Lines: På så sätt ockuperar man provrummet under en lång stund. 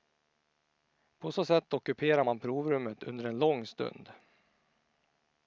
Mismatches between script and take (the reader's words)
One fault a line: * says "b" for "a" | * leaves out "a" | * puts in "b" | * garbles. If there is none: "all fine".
all fine